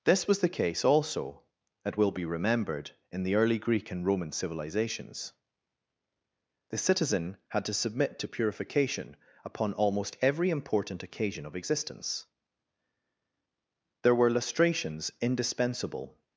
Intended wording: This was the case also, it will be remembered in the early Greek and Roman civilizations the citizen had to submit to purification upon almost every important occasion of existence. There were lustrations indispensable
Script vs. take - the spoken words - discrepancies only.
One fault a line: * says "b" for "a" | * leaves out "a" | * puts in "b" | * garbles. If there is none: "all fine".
all fine